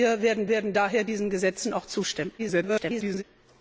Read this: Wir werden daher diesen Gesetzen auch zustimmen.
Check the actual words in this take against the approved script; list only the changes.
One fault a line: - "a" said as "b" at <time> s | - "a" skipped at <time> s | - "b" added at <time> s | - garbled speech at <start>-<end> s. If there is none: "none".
- "werden" added at 0.5 s
- garbled speech at 2.4-3.2 s